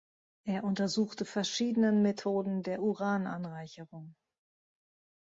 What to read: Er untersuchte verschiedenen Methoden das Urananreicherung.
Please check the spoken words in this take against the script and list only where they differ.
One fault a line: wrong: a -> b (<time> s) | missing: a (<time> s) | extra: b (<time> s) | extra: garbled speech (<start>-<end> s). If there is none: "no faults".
wrong: das -> der (2.6 s)